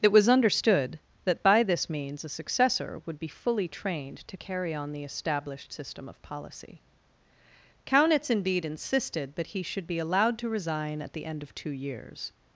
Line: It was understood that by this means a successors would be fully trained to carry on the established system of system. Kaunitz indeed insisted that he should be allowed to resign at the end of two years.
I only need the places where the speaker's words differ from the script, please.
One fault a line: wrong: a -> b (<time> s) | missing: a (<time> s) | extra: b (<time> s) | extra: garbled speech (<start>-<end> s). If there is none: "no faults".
wrong: successors -> successor (2.3 s)
wrong: system -> policy (6.2 s)